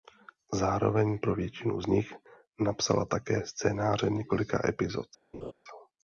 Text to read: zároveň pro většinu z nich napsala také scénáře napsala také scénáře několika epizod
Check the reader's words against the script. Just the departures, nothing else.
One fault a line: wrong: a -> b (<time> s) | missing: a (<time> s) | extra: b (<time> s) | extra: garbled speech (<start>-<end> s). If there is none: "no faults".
missing: napsala také scénáře (4.1 s)